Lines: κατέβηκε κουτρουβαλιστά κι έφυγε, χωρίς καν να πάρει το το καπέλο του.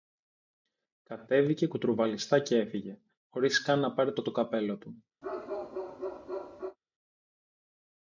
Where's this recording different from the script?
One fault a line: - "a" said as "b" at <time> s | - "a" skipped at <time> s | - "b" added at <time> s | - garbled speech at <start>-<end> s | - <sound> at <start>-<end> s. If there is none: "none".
- bark at 5.2-6.8 s